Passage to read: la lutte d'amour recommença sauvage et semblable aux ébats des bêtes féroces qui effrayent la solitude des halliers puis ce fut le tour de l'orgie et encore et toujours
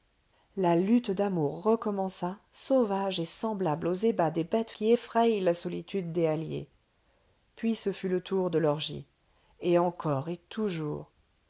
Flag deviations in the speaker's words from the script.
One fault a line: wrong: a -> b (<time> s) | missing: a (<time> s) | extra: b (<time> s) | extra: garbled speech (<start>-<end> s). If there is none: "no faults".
missing: féroces (4.7 s)